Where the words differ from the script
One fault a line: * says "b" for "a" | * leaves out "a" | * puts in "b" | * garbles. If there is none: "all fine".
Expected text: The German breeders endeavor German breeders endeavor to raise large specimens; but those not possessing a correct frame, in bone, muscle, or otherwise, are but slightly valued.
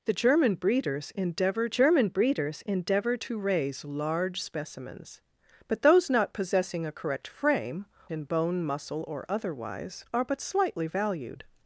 all fine